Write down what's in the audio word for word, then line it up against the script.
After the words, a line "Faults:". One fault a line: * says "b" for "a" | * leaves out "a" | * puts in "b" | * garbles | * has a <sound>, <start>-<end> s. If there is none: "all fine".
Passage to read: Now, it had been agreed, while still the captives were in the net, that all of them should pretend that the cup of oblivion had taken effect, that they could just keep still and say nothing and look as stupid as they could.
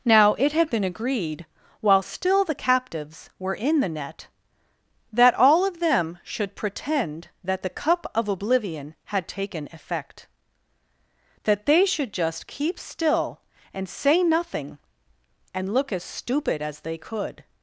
Now, it had been agreed, while still the captives were in the net, that all of them should pretend that the cup of oblivion had taken effect, that they should just keep still and say nothing and look as stupid as they could.
Faults:
* says "should" for "could"